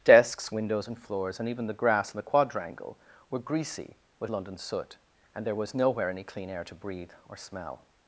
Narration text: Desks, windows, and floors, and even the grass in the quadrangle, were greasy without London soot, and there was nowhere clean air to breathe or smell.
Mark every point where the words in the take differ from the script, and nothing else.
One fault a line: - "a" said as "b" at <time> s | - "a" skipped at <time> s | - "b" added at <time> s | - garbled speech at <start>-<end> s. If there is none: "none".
- "without" said as "with" at 4.2 s
- "any" added at 6.1 s